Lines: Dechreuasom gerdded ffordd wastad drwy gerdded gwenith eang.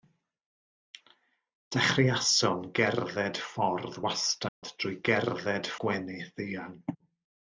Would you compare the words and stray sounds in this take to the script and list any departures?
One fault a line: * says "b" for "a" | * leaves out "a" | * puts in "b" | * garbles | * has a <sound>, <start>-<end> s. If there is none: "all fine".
* has a dropout, 4.5-4.6 s